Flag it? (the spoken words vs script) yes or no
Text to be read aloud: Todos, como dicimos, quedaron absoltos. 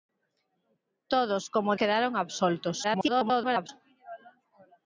yes